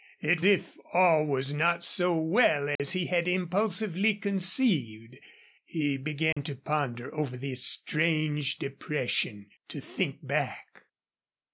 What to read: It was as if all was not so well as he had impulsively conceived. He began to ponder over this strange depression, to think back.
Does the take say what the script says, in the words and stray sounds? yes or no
no